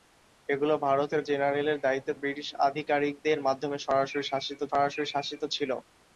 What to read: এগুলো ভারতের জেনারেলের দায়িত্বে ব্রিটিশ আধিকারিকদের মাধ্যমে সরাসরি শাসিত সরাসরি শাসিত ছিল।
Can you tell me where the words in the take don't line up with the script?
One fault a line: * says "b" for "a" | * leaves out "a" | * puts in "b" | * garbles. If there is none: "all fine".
all fine